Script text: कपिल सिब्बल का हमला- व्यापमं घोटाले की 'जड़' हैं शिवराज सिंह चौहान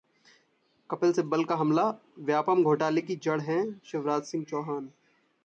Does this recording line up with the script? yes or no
yes